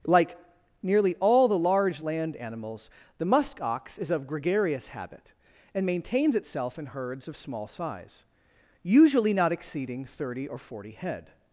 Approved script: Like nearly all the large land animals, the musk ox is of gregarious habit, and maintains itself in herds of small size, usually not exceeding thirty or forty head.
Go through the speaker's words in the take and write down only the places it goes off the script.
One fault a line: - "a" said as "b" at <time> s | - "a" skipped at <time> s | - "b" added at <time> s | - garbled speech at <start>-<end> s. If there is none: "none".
none